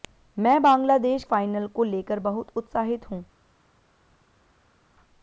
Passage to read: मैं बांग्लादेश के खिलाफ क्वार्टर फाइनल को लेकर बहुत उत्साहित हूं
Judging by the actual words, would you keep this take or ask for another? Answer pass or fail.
fail